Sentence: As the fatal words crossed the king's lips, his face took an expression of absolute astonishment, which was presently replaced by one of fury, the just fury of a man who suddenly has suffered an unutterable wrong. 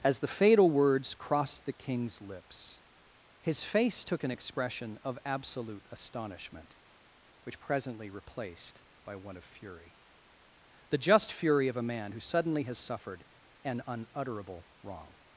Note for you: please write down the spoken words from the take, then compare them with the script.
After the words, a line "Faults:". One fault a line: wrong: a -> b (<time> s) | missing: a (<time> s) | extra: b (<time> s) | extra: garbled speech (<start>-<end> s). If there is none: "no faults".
As the fatal words crossed the king's lips, his face took an expression of absolute astonishment, which presently replaced by one of fury, the just fury of a man who suddenly has suffered an unutterable wrong.
Faults:
missing: was (7.6 s)